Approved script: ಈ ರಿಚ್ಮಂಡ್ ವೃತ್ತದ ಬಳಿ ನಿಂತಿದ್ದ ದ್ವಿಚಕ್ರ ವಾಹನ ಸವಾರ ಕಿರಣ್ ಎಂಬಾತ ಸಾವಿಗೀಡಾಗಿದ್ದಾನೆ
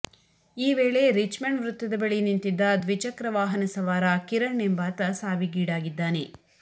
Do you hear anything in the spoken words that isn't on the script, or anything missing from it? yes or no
yes